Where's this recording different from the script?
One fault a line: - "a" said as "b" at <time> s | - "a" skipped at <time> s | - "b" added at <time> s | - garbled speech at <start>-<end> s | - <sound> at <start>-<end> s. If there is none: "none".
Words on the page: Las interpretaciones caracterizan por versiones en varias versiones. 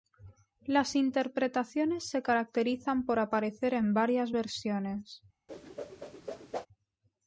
- "se" added at 2.1 s
- "versiones" said as "aparecer" at 3.2 s
- whoosh at 5.5-6.7 s